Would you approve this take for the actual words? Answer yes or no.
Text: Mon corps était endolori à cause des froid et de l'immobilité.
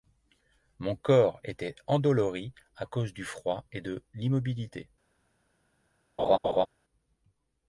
no